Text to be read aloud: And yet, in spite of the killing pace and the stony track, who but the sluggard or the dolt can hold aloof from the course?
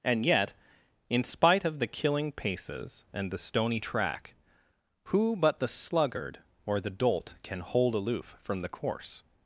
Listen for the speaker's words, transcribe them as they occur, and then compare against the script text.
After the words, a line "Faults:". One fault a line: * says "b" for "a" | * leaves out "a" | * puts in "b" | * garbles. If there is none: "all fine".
And yet, in spite of the killing paces and the stony track, who but the sluggard or the dolt can hold aloof from the course?
Faults:
* says "paces" for "pace"